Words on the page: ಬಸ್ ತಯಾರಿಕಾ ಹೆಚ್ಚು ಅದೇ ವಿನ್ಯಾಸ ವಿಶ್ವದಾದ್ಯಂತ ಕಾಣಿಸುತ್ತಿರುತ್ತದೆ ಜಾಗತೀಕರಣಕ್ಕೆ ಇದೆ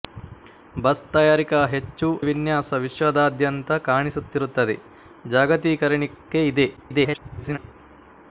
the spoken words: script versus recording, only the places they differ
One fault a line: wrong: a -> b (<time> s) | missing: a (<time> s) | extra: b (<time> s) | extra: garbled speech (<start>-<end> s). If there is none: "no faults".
missing: ಅದೇ (2.1 s)
extra: garbled speech (6.8-7.6 s)